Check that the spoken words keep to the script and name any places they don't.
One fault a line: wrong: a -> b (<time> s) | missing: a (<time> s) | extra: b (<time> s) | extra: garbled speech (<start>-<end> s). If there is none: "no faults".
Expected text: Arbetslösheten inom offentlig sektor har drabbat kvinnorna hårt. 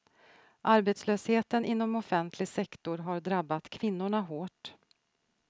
no faults